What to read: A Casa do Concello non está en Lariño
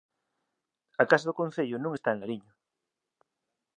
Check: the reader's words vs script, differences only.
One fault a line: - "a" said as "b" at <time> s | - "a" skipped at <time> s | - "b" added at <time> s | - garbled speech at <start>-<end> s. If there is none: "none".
none